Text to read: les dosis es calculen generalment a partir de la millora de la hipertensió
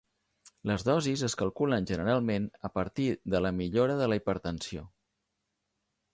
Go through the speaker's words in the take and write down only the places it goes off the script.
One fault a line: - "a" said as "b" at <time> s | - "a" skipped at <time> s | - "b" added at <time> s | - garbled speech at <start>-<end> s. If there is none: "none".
none